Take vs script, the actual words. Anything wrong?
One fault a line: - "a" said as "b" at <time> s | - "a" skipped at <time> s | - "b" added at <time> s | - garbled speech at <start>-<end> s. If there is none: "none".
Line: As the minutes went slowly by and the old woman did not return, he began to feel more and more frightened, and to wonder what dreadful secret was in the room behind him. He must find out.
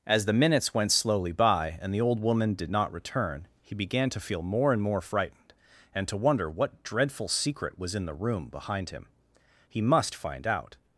none